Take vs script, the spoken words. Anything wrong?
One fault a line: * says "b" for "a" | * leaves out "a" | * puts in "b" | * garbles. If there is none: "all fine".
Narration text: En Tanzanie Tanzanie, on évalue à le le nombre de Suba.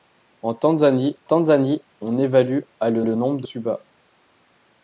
all fine